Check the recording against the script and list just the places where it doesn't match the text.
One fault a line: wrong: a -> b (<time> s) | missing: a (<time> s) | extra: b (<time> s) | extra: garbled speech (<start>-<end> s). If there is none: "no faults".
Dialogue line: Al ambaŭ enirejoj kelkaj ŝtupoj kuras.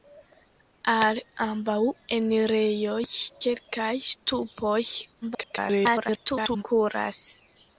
extra: garbled speech (5.2-6.6 s)